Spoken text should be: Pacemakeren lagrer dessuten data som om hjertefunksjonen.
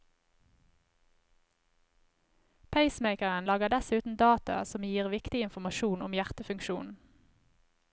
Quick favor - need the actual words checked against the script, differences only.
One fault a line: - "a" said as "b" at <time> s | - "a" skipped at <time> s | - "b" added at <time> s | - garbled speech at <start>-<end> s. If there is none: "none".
- "gir viktig informasjon" added at 4.8 s